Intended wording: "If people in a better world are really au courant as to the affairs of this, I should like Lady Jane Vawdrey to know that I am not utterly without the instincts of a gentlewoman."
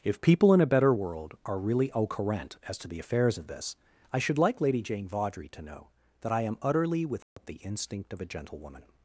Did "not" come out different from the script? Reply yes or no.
yes